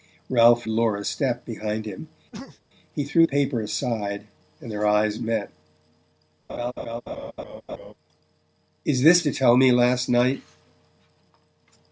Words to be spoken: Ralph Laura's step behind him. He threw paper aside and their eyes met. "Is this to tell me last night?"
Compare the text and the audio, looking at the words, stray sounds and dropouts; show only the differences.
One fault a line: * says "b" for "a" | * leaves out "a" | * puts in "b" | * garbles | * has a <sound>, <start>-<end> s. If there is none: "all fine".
* has a sneeze, 2.3-2.6 s
* has a laugh, 6.5-7.9 s